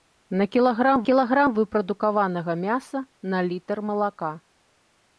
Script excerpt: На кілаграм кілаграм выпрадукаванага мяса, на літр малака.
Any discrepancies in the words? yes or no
no